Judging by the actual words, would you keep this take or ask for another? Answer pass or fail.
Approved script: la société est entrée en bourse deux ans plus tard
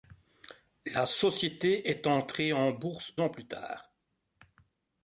fail